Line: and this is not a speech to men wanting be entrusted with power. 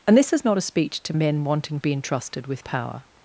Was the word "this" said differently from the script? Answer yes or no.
no